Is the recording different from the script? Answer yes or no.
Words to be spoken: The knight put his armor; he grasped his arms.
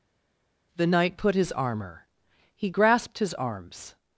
no